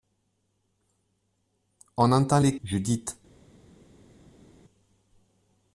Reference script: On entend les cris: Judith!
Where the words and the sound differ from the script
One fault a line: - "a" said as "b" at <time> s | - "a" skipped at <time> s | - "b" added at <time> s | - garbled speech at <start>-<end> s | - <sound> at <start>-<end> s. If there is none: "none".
- "cris" skipped at 2.6 s